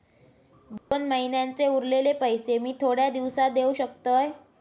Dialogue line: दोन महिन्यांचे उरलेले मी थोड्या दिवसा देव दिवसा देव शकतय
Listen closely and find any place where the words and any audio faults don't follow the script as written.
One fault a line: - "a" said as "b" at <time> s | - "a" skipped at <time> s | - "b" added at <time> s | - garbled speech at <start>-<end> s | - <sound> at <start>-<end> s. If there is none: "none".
- dropout at 0.8-0.9 s
- "पैशे" added at 2.1 s
- "दिवसा देव" skipped at 3.7 s